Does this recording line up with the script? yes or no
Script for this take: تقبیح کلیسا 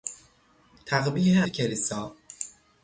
yes